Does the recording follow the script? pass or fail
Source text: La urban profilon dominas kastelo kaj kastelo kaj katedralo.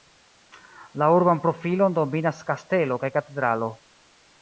fail